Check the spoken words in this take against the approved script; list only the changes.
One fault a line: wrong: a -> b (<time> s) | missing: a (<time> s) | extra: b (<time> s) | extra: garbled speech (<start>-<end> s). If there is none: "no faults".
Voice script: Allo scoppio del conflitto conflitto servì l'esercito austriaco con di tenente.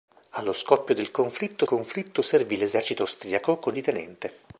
no faults